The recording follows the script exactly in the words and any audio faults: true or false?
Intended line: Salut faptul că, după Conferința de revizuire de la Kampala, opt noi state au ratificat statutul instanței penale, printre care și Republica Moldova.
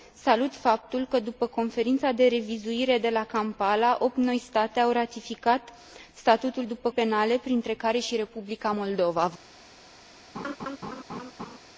false